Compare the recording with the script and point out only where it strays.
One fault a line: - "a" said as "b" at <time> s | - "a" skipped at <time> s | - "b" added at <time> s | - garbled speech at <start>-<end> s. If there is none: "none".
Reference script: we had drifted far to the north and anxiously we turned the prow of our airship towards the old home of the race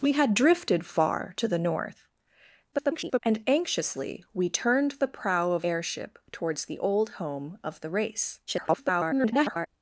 - garbled speech at 2.7-3.2 s
- "our" skipped at 5.7 s
- garbled speech at 8.5-9.7 s